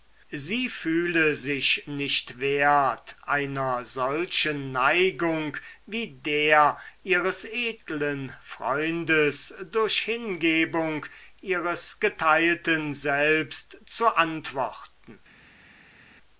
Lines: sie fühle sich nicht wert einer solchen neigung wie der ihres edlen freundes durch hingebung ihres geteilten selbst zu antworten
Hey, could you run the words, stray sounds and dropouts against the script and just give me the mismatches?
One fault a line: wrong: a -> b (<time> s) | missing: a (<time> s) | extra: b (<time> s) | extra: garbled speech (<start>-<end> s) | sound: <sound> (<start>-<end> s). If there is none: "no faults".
no faults